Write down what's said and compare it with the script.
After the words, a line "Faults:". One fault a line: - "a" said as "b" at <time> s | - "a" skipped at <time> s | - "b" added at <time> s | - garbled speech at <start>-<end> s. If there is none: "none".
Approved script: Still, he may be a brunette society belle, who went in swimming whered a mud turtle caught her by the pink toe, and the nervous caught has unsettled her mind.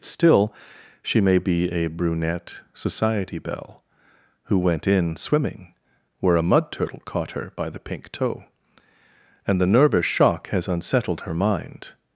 Still, she may be a brunette society belle, who went in swimming where a mud turtle caught her by the pink toe, and the nervous shock has unsettled her mind.
Faults:
- "he" said as "she" at 1.0 s
- "whered" said as "where" at 6.2 s
- "caught" said as "shock" at 10.1 s